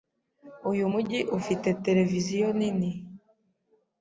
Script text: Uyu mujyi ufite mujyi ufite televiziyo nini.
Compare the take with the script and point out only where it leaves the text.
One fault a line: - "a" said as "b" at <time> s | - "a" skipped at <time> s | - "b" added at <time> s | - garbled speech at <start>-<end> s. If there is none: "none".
- "mujyi ufite" skipped at 1.7 s